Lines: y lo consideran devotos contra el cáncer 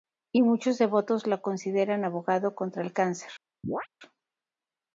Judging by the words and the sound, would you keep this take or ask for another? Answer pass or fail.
fail